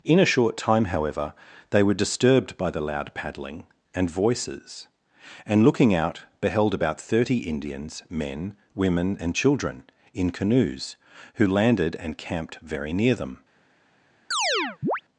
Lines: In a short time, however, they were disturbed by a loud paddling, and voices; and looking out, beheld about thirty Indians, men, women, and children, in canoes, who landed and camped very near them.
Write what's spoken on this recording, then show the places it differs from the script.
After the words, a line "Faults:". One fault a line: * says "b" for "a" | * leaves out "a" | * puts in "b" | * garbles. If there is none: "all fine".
In a short time, however, they were disturbed by the loud paddling, and voices; and looking out, beheld about thirty Indians, men, women, and children, in canoes, who landed and camped very near them.
Faults:
* says "the" for "a"